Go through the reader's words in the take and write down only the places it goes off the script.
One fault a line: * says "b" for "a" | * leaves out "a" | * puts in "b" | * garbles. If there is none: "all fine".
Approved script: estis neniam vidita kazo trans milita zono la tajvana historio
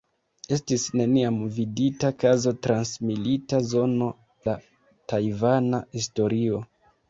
all fine